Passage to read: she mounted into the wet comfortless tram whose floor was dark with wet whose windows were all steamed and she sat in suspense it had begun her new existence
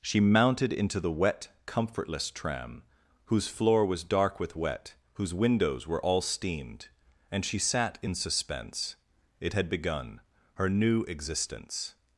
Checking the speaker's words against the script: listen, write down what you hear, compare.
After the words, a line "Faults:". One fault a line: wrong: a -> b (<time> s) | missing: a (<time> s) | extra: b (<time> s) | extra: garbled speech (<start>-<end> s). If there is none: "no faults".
she mounted into the wet comfortless tram whose floor was dark with wet whose windows were all steamed and she sat in suspense it had begun her new existence
Faults:
no faults